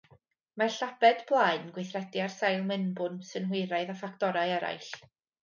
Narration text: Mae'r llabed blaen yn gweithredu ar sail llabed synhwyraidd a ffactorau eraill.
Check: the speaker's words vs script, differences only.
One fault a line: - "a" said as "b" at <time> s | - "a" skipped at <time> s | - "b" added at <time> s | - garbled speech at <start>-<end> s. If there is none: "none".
- "llabed" said as "mewnbwn" at 2.7 s